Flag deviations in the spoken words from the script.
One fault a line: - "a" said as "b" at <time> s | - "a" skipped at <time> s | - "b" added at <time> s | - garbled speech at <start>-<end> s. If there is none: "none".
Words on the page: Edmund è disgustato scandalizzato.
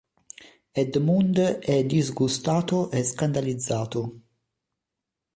- "e" added at 2.9 s